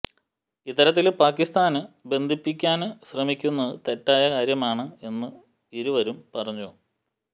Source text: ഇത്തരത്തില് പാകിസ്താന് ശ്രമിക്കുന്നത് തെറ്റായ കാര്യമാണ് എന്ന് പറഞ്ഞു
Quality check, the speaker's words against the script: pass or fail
fail